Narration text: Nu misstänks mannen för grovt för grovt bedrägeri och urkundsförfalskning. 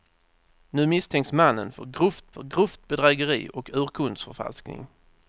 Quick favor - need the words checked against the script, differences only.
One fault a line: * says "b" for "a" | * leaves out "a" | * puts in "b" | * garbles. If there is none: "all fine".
all fine